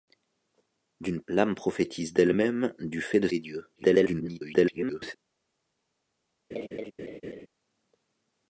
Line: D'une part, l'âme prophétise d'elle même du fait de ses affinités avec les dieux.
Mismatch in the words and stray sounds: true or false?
true